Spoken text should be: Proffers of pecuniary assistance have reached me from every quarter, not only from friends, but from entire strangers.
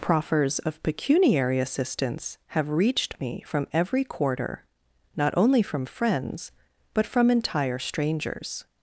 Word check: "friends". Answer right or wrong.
right